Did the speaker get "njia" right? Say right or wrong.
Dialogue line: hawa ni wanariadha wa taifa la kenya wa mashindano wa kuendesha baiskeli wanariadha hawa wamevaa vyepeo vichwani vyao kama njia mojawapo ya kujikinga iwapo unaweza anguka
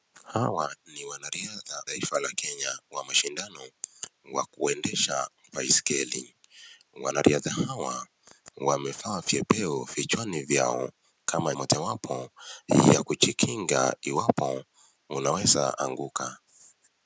wrong